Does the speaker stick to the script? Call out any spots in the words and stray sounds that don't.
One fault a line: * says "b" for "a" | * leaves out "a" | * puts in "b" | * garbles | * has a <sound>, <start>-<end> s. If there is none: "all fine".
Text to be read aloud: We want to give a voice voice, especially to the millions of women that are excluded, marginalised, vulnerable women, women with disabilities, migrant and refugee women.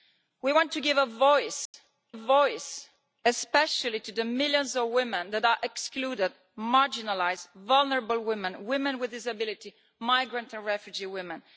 * has a dropout, 1.7-1.7 s